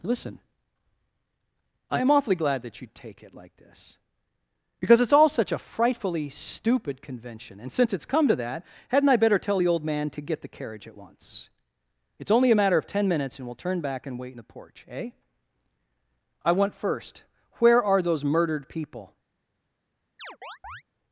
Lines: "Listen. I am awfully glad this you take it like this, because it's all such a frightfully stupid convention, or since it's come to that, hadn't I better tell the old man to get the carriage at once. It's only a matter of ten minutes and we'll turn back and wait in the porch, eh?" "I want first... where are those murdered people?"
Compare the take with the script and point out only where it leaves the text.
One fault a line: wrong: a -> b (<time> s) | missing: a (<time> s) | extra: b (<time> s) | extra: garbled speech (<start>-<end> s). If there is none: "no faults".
wrong: this -> that (2.6 s)
wrong: or -> and (7.6 s)